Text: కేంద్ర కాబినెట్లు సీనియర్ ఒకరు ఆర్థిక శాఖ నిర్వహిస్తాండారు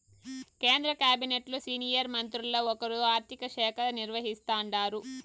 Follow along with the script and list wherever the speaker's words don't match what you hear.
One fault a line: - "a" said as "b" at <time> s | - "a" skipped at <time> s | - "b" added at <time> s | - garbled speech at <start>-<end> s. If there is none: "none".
- "మంత్రుల్ల" added at 2.1 s